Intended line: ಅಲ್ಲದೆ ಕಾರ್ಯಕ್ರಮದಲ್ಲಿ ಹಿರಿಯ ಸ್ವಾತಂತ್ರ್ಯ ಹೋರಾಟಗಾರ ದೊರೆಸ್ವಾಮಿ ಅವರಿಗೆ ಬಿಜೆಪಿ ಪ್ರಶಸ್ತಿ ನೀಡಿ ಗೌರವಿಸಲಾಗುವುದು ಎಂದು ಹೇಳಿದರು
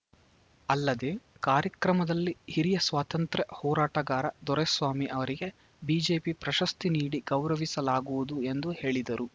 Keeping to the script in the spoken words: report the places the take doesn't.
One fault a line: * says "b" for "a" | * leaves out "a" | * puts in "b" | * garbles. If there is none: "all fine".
all fine